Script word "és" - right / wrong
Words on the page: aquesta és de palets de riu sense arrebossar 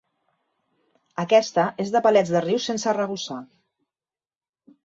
right